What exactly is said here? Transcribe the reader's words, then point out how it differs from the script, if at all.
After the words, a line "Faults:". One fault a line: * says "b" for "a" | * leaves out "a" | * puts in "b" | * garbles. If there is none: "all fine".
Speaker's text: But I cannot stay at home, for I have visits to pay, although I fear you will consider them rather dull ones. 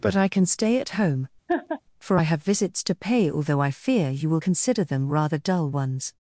But I can stay at home, for I have visits to pay, although I fear you will consider them rather dull ones.
Faults:
* says "can" for "cannot"